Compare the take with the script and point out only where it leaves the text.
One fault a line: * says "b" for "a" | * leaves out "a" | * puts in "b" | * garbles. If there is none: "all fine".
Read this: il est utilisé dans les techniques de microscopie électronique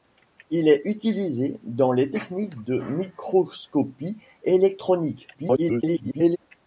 * garbles